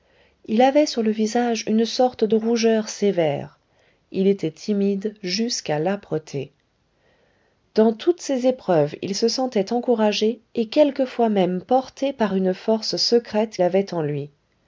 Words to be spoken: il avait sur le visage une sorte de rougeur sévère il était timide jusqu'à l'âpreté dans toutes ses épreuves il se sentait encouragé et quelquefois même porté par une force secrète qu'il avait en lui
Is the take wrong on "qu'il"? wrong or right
wrong